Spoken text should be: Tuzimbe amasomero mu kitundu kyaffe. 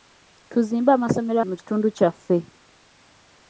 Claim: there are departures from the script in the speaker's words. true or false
false